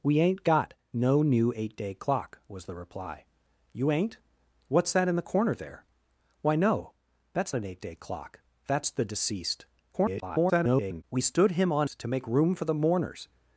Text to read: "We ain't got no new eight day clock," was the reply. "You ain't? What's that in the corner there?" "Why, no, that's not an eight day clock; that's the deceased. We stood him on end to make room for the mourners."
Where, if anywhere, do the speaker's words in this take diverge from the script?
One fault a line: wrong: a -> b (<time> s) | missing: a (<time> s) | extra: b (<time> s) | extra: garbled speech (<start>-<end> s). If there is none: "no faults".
missing: not (7.5 s)
extra: garbled speech (9.9-11.0 s)
missing: end (11.9 s)